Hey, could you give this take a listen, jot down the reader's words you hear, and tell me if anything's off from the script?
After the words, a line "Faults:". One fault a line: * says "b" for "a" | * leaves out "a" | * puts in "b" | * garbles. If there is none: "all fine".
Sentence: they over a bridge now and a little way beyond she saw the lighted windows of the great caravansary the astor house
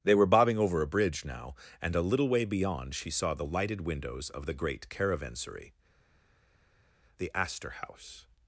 they were bobbing over a bridge now and a little way beyond she saw the lighted windows of the great caravansary the astor house
Faults:
* puts in "were bobbing"